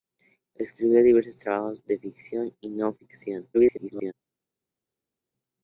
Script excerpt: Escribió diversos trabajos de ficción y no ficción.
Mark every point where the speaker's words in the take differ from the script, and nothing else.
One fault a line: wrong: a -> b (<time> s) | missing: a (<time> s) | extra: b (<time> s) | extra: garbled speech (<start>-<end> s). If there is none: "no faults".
extra: garbled speech (3.5-4.1 s)